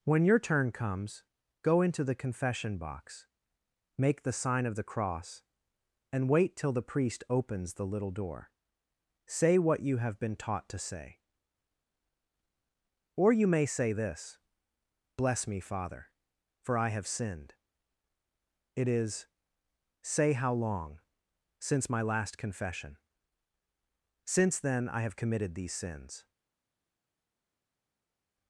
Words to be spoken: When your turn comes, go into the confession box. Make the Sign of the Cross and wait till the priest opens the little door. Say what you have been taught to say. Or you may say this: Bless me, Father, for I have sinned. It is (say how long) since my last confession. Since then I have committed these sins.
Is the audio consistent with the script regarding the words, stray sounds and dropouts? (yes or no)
yes